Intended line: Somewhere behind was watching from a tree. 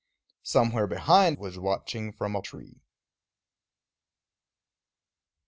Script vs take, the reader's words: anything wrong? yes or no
no